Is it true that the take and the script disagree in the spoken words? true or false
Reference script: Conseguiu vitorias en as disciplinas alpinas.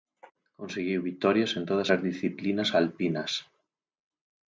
true